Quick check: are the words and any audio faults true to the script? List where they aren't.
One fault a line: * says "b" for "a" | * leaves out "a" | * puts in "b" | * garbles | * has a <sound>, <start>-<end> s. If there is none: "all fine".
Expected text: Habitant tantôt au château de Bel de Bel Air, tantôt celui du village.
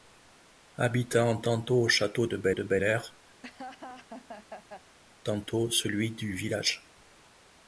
* has a laugh, 3.4-5.0 s